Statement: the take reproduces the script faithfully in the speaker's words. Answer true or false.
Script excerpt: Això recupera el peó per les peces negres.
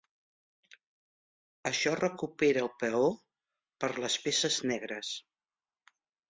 true